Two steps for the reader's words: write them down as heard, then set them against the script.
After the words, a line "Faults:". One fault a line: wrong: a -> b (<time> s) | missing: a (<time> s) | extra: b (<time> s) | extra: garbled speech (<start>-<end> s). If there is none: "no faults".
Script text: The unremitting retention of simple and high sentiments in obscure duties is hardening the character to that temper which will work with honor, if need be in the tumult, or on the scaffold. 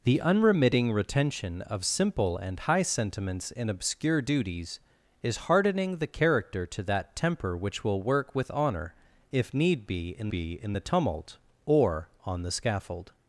The unremitting retention of simple and high sentiments in obscure duties is hardening the character to that temper which will work with honor, if need be in be in the tumult, or on the scaffold.
Faults:
extra: be in (10.3 s)